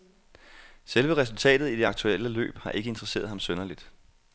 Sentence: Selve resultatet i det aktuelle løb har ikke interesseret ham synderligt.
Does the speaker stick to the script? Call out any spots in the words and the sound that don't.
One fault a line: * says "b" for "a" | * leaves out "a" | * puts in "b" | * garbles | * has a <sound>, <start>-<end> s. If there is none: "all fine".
all fine